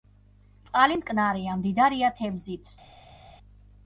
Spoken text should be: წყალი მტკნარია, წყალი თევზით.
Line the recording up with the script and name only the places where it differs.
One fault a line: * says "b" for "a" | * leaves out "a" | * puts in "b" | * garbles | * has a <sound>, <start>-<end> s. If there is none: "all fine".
* says "მდიდარია" for "წყალი"